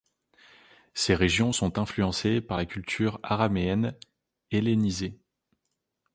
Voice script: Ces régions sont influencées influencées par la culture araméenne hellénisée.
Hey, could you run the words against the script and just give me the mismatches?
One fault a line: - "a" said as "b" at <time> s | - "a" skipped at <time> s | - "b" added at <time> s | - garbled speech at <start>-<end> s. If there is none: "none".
- "influencées" skipped at 2.4 s